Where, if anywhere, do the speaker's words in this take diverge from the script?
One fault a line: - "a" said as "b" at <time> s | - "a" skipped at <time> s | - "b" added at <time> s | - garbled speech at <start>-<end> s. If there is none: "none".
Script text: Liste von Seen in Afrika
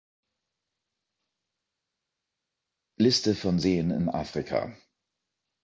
none